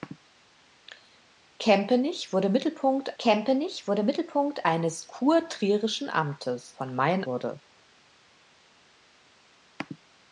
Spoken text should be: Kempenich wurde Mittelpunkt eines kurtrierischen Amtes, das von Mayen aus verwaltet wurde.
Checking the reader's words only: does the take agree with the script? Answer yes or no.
no